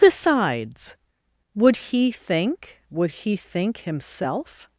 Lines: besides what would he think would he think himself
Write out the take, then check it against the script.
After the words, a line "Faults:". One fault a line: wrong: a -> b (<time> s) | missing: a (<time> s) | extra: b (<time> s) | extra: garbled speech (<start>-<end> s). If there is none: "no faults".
besides would he think would he think himself
Faults:
missing: what (0.9 s)